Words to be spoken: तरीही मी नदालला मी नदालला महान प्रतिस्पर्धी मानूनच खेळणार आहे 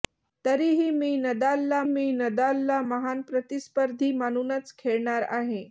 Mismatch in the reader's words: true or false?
false